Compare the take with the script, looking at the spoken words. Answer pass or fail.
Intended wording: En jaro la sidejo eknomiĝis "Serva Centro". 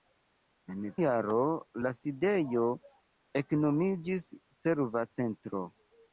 pass